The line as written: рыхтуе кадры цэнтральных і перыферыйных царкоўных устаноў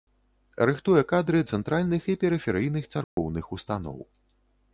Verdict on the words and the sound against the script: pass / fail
fail